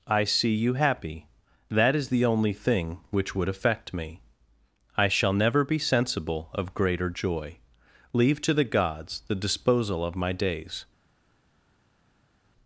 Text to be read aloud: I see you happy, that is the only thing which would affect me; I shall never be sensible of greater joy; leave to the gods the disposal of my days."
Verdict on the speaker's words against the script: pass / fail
pass